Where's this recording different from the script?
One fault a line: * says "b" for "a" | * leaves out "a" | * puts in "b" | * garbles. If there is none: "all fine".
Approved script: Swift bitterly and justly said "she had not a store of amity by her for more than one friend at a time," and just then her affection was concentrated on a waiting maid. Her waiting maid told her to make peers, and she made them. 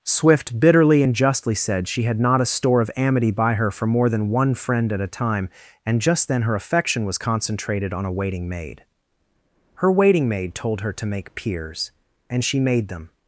all fine